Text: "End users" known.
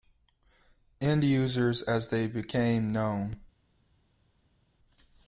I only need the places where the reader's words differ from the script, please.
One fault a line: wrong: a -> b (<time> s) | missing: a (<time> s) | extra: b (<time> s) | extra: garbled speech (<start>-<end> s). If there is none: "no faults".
extra: as they became (1.8 s)